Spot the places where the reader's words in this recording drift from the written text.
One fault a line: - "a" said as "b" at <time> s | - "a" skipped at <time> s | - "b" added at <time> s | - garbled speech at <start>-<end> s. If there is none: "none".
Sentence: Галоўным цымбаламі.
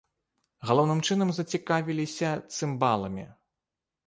- "чынам зацікавіліся" added at 1.1 s